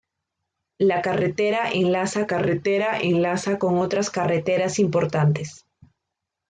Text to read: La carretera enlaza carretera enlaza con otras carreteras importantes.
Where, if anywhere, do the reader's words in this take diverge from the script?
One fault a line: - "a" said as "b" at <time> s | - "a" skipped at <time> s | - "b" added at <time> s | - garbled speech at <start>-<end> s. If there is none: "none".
none